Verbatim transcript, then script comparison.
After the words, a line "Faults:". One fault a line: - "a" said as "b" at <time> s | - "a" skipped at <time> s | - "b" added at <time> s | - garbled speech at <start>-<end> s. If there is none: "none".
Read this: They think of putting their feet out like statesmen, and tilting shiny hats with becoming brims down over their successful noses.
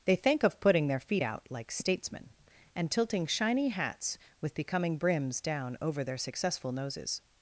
They think of putting their feet out like statesmen, and tilting shiny hats with becoming brims down over their successful noses.
Faults:
none